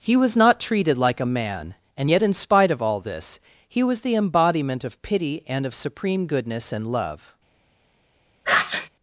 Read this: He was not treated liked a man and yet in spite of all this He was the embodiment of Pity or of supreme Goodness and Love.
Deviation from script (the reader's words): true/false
true